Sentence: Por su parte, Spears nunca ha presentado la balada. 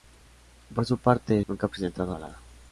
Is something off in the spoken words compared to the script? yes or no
yes